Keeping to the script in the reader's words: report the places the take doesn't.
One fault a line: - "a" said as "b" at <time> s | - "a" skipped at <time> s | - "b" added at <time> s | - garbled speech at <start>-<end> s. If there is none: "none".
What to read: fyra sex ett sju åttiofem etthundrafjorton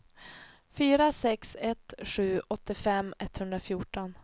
none